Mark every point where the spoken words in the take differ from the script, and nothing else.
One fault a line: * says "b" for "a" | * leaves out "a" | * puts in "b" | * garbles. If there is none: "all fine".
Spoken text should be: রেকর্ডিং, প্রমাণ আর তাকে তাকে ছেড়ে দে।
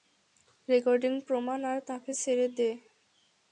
* leaves out "তাকে"